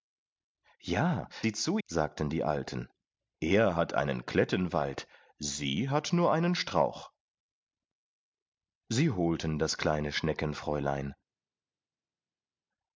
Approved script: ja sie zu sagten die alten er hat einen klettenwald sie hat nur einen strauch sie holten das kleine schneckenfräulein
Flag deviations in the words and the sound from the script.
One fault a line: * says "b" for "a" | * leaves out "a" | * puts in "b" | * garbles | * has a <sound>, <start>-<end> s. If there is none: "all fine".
all fine